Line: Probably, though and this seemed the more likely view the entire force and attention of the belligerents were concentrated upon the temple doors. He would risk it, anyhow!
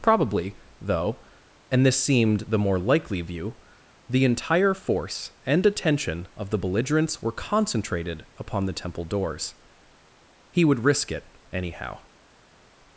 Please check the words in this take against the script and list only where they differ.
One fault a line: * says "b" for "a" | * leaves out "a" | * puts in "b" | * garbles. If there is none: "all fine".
all fine